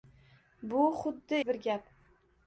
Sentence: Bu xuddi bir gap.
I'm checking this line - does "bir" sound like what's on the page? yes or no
yes